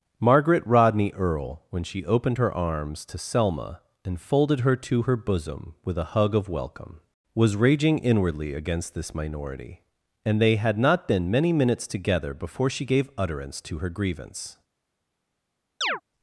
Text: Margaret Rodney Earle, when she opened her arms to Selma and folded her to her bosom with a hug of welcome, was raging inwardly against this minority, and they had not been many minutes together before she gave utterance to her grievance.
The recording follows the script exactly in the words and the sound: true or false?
false